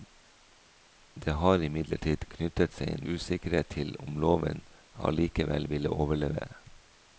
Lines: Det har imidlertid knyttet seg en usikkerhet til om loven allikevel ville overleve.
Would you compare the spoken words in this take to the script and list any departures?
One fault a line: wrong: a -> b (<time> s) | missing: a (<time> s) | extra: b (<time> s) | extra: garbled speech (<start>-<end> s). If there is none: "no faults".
no faults